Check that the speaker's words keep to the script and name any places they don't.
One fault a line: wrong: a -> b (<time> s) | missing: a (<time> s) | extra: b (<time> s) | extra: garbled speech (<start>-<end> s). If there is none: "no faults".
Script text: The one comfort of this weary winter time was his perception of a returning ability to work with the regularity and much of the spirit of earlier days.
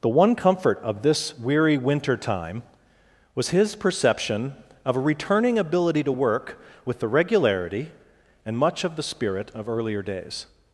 no faults